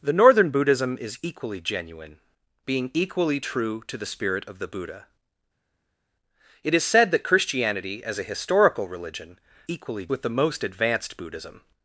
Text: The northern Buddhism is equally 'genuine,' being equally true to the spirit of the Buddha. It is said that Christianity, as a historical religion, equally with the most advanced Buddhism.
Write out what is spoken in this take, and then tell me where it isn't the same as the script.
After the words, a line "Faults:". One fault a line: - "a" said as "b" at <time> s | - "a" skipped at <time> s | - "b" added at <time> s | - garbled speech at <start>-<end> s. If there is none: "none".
The northern Buddhism is equally 'genuine,' being equally true to the spirit of the Buddha. It is said that Christianity, as a historical religion, equally with the most advanced Buddhism.
Faults:
none